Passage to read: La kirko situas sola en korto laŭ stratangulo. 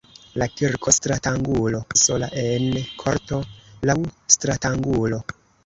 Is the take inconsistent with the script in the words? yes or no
yes